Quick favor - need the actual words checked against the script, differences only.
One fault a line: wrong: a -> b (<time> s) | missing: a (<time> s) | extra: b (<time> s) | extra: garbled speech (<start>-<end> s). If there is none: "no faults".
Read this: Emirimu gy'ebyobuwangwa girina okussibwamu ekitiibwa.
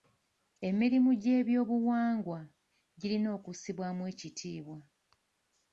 no faults